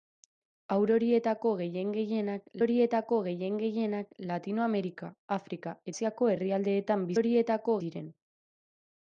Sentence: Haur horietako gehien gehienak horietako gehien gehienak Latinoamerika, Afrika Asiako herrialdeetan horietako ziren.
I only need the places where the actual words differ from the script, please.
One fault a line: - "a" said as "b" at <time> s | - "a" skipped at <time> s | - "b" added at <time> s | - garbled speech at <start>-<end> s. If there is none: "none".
none